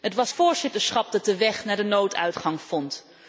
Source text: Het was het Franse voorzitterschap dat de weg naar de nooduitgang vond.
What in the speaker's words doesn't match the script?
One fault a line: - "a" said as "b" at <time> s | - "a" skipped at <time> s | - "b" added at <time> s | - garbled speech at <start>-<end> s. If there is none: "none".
- "het Franse" skipped at 0.3 s